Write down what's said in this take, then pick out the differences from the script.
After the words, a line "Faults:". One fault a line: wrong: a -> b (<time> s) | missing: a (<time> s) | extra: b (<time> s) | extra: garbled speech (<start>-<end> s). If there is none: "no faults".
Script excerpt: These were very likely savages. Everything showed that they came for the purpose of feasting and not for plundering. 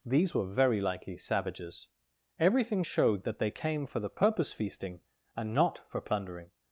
These were very likely savages. Everything showed that they came for the purpose feasting and not for plundering.
Faults:
missing: of (4.5 s)